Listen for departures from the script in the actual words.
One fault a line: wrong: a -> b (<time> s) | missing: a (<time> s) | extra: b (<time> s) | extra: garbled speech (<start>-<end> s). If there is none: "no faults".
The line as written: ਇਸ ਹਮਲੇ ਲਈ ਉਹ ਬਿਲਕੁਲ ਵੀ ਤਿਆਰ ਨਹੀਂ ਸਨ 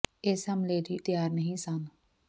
missing: ਉਹ ਬਿਲਕੁਲ ਵੀ (1.0 s)